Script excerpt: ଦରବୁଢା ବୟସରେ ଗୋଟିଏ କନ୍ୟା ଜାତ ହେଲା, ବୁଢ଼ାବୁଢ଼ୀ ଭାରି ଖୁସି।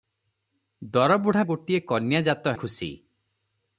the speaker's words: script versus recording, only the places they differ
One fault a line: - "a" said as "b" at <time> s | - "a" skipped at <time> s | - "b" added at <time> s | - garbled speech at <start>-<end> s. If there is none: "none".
- "ବୟସରେ" skipped at 1.4 s
- "ହେଲା ବୁଢ଼ାବୁଢ଼ୀ ଭାରି" skipped at 2.5 s